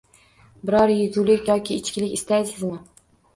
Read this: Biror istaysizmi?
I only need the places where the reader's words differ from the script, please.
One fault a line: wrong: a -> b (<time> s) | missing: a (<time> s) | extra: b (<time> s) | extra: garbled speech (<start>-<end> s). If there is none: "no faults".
extra: yegulik yoki ichkilik (0.9 s)